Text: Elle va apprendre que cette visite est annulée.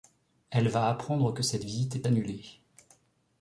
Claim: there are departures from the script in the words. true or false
false